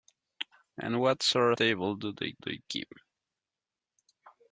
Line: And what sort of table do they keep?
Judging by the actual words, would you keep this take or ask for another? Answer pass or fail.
fail